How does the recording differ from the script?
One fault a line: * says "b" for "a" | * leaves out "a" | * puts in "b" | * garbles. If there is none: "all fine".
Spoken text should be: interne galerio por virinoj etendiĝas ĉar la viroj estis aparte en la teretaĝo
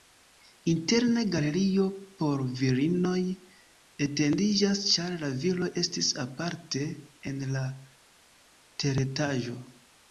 all fine